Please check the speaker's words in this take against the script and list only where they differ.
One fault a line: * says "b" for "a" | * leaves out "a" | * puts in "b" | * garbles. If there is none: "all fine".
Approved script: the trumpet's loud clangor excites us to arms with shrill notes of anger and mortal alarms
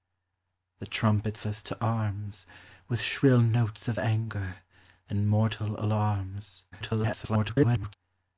* leaves out "loud clangor excites"
* garbles